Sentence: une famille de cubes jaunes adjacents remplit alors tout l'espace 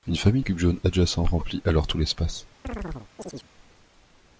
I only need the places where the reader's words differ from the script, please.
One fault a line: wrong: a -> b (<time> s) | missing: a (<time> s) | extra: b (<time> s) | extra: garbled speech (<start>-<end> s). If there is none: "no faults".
missing: de (0.4 s)